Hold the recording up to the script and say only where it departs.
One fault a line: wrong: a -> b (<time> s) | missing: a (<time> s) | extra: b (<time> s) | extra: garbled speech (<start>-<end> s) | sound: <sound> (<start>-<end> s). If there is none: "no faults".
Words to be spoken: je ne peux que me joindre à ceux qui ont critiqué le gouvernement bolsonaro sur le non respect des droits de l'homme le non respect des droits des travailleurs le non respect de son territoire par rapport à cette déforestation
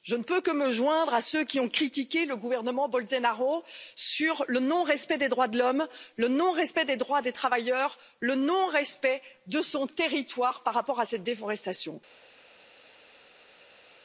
no faults